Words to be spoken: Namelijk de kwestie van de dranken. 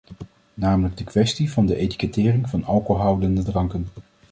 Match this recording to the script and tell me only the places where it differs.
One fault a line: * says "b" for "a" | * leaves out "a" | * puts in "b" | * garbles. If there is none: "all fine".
* puts in "etikettering van alcoholhoudende"